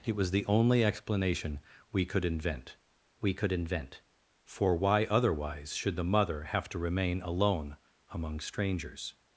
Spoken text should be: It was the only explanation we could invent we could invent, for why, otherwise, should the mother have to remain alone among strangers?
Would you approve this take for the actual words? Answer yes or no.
yes